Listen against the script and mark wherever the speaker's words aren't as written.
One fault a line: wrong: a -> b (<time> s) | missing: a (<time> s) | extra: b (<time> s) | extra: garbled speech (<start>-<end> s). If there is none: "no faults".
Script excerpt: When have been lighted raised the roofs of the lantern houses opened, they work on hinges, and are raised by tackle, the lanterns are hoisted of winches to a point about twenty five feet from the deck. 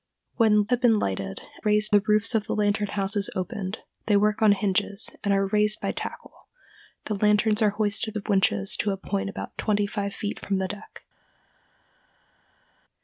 no faults